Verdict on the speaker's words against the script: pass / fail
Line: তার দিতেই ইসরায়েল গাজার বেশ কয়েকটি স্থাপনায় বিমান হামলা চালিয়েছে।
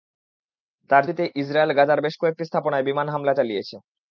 pass